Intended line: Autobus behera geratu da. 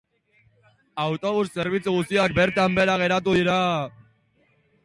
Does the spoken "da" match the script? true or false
false